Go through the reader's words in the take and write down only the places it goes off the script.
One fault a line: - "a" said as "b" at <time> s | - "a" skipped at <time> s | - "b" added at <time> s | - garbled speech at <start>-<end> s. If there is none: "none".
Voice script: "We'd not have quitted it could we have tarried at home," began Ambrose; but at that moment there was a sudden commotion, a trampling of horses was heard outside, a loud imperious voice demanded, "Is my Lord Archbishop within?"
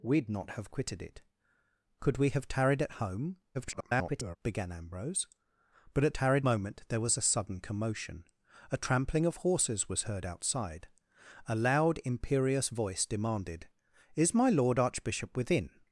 - garbled speech at 3.5-4.4 s
- "that" said as "tarried" at 6.1 s